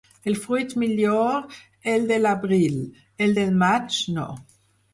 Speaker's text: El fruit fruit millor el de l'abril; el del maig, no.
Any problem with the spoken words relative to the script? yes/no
yes